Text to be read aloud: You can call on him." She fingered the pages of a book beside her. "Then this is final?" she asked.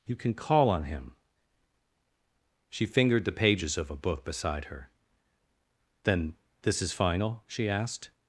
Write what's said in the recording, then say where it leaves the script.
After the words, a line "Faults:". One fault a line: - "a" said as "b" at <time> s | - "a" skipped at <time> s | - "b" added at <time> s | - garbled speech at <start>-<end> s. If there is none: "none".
You can call on him." She fingered the pages of a book beside her. "Then this is final?" she asked.
Faults:
none